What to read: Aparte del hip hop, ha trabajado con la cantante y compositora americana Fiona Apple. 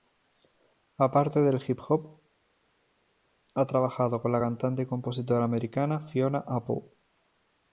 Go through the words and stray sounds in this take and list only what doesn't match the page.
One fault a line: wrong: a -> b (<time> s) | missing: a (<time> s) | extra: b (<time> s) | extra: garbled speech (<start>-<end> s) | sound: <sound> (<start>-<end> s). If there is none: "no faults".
no faults